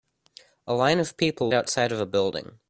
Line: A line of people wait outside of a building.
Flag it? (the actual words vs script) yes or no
yes